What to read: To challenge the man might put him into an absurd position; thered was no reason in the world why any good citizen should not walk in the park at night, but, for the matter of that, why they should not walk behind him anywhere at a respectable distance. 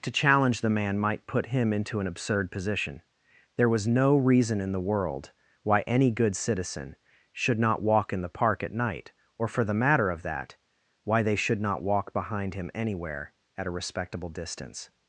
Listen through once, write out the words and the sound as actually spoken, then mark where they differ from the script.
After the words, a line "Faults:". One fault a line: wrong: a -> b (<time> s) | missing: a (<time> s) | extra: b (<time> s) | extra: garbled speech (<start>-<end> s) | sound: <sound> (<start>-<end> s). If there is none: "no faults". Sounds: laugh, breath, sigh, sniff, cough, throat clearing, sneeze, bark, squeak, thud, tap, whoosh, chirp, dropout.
To challenge the man might put him into an absurd position; there was no reason in the world why any good citizen should not walk in the park at night, or, for the matter of that, why they should not walk behind him anywhere at a respectable distance.
Faults:
wrong: thered -> there (3.5 s)
wrong: but -> or (9.4 s)